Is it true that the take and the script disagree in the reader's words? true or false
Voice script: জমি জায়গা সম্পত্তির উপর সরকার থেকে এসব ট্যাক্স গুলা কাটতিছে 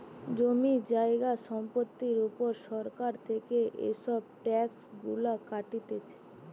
false